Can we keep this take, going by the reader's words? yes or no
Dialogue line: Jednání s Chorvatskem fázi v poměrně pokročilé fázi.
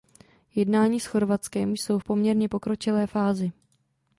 no